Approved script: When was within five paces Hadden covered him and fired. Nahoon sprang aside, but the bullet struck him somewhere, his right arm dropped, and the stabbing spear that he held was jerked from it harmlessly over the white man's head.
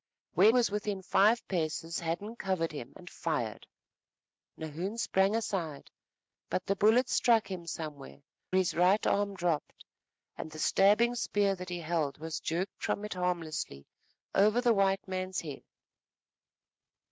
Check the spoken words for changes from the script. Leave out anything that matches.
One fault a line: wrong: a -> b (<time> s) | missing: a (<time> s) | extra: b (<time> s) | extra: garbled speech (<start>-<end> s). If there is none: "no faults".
no faults